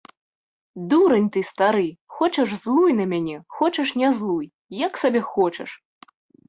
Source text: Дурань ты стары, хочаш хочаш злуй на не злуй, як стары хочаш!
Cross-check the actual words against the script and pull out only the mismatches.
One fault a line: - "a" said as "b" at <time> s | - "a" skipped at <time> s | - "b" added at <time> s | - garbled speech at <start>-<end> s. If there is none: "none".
- "хочаш" skipped at 2.5 s
- "мяне хочаш" added at 3.2 s
- "стары" said as "сабе" at 5.1 s